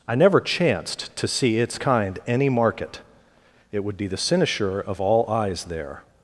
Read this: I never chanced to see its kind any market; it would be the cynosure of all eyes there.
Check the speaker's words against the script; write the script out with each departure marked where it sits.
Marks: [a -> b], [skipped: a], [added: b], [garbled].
I never chanced to see its kind any market; it would be the cynosure of all eyes there.